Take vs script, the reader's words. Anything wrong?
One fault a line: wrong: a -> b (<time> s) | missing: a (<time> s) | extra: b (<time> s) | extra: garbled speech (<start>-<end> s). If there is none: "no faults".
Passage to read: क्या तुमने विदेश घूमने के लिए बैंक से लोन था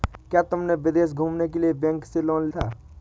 no faults